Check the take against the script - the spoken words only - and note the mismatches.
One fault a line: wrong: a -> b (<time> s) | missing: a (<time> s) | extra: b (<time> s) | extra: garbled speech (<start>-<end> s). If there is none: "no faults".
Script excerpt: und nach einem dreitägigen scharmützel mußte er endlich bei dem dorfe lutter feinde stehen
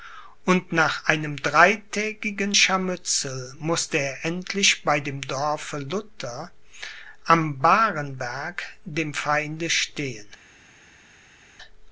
extra: am barenberg dem (7.2 s)